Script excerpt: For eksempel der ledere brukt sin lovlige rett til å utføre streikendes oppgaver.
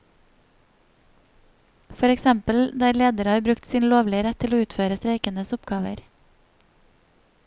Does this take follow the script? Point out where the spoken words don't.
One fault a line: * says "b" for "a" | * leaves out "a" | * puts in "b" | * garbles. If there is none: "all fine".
* puts in "har"